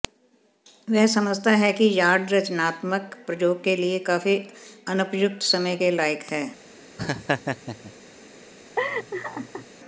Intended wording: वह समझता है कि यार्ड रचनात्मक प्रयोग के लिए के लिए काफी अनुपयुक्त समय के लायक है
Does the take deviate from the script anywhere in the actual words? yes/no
yes